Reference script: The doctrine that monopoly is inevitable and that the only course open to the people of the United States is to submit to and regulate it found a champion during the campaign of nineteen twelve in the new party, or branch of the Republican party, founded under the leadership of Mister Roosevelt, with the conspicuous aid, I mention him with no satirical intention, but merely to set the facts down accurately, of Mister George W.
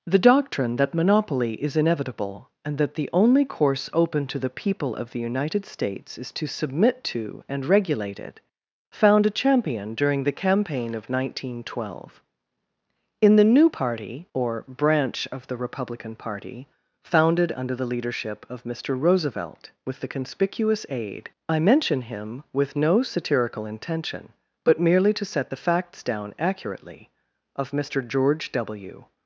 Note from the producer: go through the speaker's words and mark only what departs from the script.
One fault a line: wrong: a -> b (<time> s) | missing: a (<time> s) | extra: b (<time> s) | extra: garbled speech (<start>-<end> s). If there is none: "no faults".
no faults